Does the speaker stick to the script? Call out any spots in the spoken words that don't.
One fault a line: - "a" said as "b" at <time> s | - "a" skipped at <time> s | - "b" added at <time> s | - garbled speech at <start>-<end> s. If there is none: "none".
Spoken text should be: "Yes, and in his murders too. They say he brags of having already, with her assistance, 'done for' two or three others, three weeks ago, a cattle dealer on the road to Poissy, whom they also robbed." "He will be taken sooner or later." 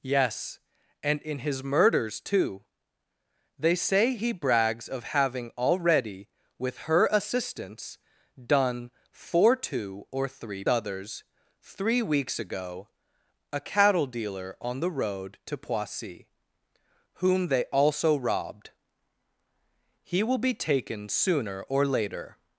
none